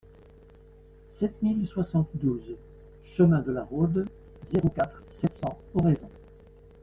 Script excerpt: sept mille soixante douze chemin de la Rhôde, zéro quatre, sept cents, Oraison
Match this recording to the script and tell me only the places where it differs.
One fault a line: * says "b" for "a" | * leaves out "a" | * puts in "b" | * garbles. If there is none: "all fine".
all fine